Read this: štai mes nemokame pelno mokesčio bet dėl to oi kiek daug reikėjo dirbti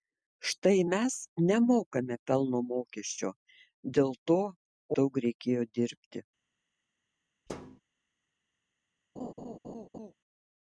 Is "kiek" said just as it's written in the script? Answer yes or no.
no